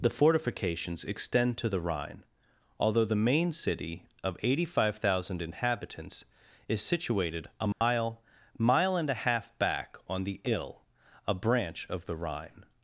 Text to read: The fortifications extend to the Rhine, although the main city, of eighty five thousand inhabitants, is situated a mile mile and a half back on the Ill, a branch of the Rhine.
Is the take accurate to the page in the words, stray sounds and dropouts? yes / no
no